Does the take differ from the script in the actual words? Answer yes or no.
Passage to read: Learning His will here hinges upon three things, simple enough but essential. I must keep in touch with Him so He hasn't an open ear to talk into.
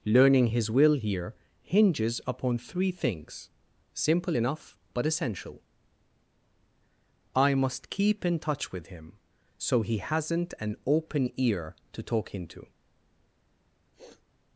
no